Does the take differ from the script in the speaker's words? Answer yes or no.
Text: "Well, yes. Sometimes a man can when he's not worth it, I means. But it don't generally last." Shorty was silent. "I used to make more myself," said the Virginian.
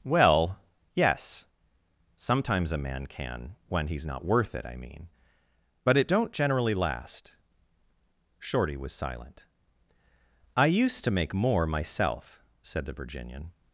yes